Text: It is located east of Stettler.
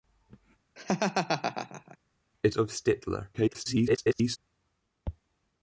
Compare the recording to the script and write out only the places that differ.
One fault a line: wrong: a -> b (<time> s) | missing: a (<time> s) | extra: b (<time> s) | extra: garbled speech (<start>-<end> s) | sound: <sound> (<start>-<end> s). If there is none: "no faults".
sound: laugh (0.8-2.0 s)
missing: is located east (2.6 s)
extra: garbled speech (3.3-4.4 s)